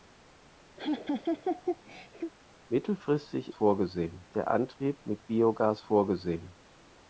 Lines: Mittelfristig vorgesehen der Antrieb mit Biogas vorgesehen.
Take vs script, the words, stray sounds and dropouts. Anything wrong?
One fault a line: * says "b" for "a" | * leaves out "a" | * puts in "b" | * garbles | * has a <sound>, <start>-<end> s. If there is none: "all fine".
* has a laugh, 0.8-2.3 s